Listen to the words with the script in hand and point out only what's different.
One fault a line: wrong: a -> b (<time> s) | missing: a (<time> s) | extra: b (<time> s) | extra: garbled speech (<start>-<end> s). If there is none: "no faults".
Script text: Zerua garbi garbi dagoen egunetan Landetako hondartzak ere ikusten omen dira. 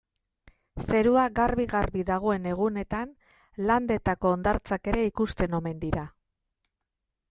no faults